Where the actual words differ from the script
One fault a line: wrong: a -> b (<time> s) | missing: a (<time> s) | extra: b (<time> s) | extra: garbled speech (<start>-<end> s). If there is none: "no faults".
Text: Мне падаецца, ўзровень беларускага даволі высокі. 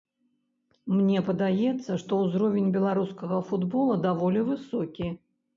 extra: што (2.0 s)
extra: футбола (3.5 s)